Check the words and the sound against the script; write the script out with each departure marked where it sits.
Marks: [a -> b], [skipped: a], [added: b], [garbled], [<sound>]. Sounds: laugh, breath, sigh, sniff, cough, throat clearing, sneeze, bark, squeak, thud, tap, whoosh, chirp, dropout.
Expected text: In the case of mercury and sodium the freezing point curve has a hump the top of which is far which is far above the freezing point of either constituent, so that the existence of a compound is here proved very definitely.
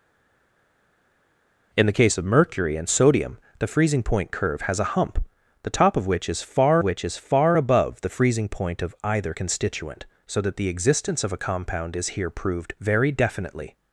In the case of mercury and sodium the freezing point curve has a hump the top of which is far which is far above the freezing point of either constituent, so that the existence of a compound is here proved very definitely.